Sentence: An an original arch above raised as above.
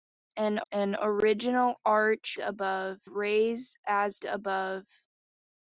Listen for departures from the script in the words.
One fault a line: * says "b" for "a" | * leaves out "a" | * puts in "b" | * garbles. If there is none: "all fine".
all fine